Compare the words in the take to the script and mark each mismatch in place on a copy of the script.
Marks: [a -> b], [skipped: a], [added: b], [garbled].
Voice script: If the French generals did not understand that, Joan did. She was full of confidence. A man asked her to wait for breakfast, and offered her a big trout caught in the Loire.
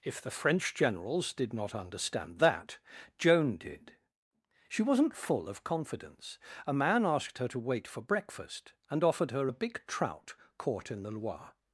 If the French generals did not understand that, Joan did. She [was -> wasn't] full of confidence. A man asked her to wait for breakfast, and offered her a big trout caught in the Loire.